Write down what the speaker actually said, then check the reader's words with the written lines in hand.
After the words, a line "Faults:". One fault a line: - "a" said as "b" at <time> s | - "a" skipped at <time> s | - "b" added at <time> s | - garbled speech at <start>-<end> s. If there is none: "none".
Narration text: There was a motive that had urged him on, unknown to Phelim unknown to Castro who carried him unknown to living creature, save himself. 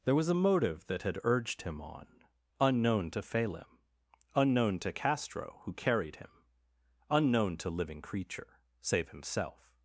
There was a motive that had urged him on, unknown to Phelim unknown to Castro who carried him unknown to living creature, save himself.
Faults:
none